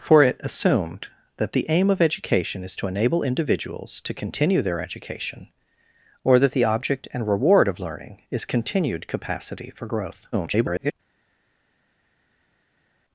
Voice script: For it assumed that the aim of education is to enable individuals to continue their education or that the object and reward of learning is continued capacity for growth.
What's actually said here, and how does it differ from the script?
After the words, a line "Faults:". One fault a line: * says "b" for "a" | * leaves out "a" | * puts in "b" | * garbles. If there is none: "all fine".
For it assumed that the aim of education is to enable individuals to continue their education or that the object and reward of learning is continued capacity for growth. [garbled]
Faults:
* garbles